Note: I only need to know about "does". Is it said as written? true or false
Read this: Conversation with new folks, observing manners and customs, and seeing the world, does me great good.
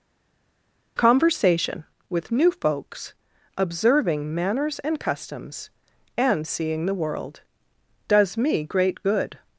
true